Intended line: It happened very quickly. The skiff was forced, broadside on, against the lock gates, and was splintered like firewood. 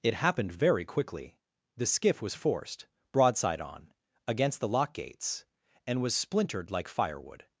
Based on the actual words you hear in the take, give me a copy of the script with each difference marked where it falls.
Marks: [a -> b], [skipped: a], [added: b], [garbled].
It happened very quickly. The skiff was forced, broadside on, against the lock gates, and was splintered like firewood.